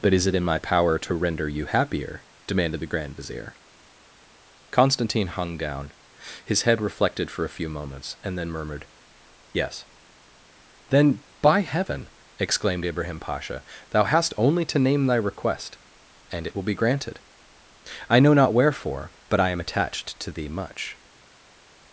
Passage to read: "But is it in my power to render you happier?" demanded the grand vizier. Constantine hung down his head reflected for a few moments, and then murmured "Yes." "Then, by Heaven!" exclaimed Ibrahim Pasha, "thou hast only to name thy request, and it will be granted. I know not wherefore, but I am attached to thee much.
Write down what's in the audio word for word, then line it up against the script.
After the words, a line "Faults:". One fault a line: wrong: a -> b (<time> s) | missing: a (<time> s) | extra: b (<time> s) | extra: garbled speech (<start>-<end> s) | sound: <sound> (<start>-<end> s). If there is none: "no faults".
"But is it in my power to render you happier?" demanded the grand vizier. Constantine hung down his head reflected for a few moments, and then murmured "Yes." "Then, by Heaven!" exclaimed Ibrahim Pasha, "thou hast only to name thy request, and it will be granted. I know not wherefore, but I am attached to thee much.
Faults:
no faults